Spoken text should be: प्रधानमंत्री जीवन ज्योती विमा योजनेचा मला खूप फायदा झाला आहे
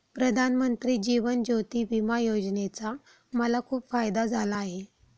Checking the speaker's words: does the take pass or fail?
pass